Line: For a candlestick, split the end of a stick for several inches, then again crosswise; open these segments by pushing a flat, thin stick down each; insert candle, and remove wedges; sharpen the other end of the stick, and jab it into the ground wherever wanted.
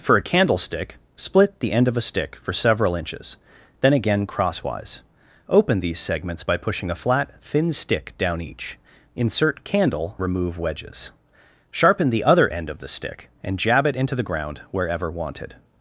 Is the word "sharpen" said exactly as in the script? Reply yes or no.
yes